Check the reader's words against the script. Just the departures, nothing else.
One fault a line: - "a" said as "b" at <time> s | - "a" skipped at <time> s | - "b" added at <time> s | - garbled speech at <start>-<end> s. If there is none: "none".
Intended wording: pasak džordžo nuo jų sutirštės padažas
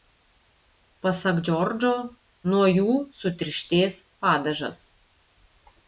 none